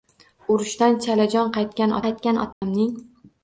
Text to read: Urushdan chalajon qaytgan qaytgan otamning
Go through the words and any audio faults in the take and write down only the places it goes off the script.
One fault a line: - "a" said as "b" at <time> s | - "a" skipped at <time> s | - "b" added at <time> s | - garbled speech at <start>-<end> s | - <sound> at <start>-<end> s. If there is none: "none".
- dropout at 2.5-2.6 s